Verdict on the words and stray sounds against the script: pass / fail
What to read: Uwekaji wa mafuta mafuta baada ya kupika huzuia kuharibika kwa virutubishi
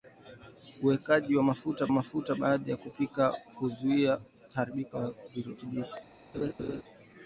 fail